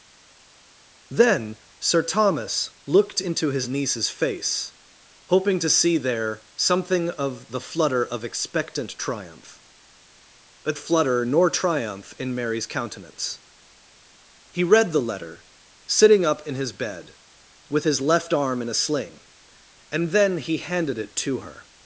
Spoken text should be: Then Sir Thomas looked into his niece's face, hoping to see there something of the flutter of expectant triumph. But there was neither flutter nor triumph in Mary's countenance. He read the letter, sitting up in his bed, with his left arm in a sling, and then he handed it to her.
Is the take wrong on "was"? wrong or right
wrong